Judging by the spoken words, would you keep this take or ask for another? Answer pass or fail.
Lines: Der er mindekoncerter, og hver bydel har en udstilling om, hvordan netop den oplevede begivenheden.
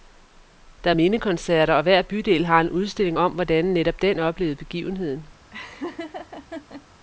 pass